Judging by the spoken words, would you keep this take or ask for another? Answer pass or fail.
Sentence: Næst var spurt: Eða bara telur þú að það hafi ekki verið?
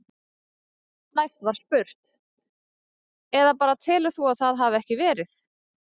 pass